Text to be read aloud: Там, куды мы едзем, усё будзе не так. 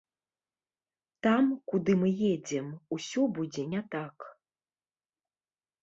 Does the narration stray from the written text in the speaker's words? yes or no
no